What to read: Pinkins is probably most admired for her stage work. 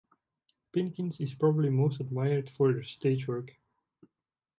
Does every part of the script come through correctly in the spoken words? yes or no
yes